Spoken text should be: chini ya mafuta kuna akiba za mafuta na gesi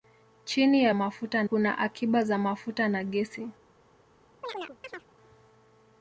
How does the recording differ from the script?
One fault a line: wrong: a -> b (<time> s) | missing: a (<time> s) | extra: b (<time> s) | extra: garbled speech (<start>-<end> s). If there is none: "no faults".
no faults